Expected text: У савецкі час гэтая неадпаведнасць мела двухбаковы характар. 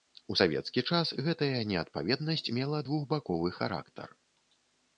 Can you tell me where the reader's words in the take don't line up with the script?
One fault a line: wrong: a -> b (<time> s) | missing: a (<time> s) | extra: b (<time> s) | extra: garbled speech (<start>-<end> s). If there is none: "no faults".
no faults